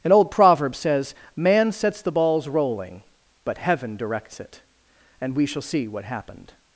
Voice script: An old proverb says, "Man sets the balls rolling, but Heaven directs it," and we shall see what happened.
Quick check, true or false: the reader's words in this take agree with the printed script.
true